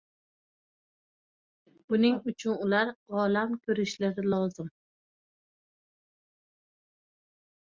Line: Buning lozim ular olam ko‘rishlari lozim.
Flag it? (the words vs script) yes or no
yes